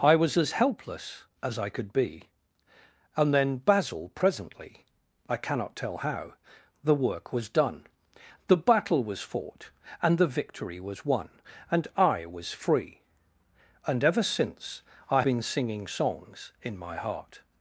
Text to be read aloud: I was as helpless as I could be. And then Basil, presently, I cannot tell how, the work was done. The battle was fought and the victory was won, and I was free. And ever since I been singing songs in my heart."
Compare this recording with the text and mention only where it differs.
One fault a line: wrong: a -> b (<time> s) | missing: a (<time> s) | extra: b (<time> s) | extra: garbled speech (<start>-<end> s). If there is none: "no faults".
no faults